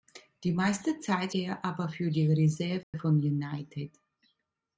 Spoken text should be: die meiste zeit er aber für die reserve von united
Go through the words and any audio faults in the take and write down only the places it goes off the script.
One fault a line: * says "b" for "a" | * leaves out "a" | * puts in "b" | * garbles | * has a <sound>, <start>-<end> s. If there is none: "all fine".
* has a dropout, 2.8-2.9 s